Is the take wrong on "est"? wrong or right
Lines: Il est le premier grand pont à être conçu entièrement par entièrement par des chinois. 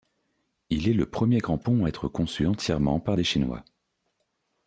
right